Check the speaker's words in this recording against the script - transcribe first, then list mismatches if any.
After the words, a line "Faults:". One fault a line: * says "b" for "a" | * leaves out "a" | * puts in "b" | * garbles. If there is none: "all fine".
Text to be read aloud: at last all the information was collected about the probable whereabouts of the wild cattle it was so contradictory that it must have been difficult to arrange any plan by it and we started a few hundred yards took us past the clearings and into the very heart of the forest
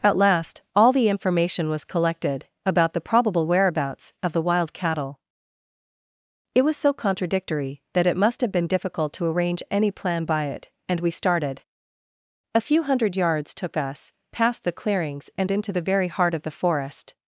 at last all the information was collected about the probable whereabouts of the wild cattle it was so contradictory that it must have been difficult to arrange any plan by it and we started a few hundred yards took us past the clearings and into the very heart of the forest
Faults:
all fine